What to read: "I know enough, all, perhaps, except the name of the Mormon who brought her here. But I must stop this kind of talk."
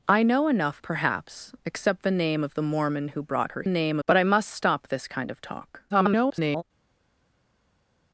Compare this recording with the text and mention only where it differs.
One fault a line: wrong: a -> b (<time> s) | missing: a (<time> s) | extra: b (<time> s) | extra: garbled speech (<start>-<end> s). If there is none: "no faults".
missing: all (0.8 s)
wrong: here -> name (3.7 s)
extra: garbled speech (5.9-6.6 s)